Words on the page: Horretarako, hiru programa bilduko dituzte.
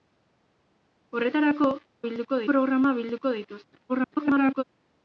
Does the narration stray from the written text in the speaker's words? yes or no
yes